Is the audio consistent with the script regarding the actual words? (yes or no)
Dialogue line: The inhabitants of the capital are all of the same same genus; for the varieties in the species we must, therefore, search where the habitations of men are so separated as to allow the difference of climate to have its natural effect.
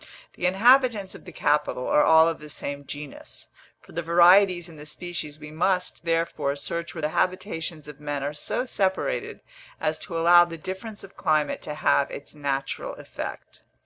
no